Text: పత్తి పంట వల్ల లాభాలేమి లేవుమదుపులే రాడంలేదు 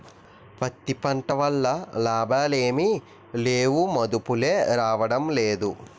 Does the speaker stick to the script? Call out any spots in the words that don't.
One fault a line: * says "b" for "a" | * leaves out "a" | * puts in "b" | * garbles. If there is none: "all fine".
all fine